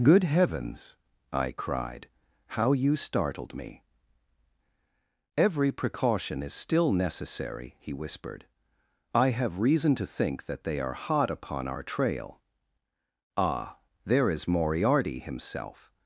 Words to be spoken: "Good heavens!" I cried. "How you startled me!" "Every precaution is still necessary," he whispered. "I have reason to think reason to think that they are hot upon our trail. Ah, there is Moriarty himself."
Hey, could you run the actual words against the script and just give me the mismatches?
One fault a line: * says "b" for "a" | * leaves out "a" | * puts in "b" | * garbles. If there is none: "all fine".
* leaves out "reason to think"